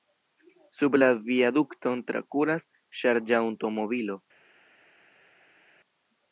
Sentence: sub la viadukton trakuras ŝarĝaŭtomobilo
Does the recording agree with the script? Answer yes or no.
yes